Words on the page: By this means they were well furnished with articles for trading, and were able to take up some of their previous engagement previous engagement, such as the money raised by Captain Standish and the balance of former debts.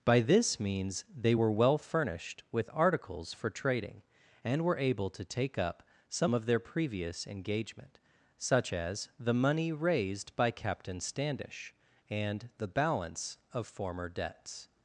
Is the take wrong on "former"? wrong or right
right